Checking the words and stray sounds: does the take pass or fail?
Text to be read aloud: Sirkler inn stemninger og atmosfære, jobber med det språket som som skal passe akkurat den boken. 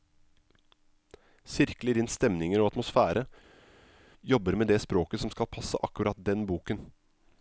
fail